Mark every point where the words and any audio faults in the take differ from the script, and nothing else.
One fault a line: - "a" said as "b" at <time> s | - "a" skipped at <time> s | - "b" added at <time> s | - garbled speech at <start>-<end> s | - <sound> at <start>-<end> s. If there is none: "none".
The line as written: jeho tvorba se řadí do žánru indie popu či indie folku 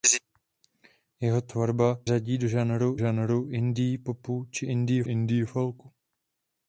- "se" skipped at 2.0 s
- "žánru" added at 3.0 s
- "indie" added at 5.0 s